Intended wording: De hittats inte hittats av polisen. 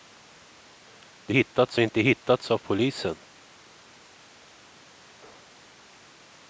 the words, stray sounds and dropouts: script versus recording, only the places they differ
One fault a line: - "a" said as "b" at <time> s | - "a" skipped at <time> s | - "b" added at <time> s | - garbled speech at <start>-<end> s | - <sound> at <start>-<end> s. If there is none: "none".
none